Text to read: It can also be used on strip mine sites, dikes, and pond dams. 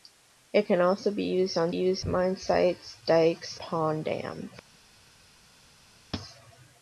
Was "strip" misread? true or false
true